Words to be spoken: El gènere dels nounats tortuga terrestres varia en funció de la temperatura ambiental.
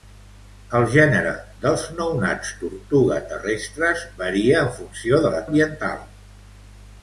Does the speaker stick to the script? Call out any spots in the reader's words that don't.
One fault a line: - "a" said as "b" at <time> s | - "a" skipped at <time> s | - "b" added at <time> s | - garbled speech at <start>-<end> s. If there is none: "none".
- "temperatura" skipped at 5.4 s